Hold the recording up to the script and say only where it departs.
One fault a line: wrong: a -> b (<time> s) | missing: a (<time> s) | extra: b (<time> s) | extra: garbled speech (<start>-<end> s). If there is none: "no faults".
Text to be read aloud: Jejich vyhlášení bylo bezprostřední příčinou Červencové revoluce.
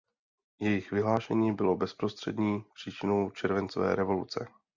no faults